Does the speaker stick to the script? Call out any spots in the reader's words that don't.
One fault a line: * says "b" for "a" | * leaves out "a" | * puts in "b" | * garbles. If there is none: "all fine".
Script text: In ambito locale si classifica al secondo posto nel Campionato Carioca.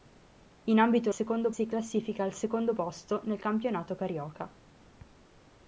* says "secondo" for "locale"